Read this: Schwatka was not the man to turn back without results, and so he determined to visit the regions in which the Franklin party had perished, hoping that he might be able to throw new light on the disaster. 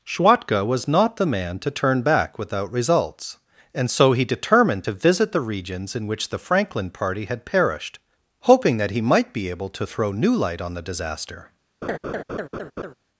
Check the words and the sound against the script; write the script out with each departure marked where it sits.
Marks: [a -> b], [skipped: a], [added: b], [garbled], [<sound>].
Schwatka was not the man to turn back without results, and so he determined to visit the regions in which the Franklin party had perished, hoping that he might be able to throw new light on the disaster. [laugh]